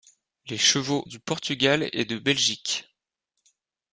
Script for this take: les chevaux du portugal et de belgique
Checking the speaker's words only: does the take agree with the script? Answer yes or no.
yes